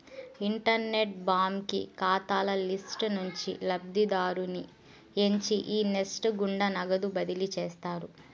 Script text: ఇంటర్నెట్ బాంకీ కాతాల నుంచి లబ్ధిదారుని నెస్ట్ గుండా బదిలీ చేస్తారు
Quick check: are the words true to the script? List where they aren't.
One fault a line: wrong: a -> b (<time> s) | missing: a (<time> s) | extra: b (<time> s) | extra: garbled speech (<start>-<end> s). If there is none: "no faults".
extra: లిస్టు (2.6 s)
extra: ఎంచి ఈ (5.2 s)
extra: నగదు (6.8 s)